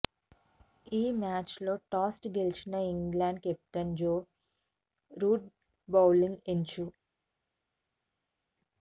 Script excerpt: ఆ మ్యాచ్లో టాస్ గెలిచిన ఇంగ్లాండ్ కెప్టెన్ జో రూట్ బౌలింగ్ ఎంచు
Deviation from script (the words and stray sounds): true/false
true